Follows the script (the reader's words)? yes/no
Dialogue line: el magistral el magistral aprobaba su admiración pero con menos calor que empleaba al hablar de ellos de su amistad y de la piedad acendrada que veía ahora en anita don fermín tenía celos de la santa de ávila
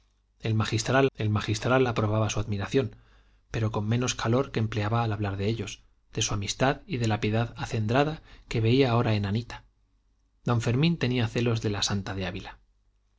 yes